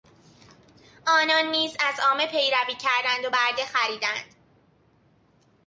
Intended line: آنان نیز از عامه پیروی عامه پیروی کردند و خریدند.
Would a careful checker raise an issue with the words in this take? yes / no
yes